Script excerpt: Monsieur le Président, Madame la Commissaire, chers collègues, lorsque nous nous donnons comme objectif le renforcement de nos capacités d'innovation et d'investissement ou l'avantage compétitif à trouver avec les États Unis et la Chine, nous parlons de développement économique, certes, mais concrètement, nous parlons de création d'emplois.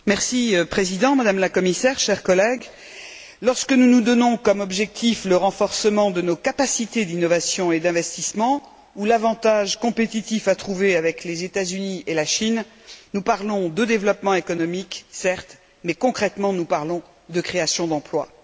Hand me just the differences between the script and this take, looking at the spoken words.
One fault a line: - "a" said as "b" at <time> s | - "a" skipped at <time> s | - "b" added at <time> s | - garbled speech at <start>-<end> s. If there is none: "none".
none